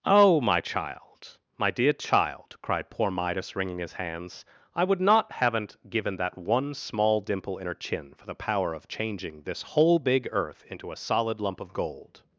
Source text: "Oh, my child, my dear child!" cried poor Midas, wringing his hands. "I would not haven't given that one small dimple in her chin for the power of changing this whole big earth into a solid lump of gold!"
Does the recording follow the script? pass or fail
pass